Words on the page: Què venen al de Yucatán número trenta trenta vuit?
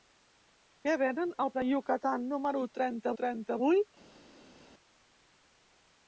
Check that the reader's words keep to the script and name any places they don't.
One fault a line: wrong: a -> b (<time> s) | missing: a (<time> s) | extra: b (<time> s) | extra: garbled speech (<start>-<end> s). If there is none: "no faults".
no faults